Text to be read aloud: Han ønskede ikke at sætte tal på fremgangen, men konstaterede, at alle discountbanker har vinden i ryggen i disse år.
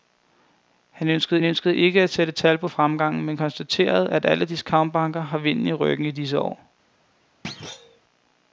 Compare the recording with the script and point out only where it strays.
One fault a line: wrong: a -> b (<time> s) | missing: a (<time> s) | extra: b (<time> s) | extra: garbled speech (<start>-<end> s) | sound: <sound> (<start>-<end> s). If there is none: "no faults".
extra: ønskede (1.4 s)
sound: thud (7.4-8.0 s)